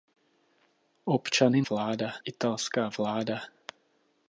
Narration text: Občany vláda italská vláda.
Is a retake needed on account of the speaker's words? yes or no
no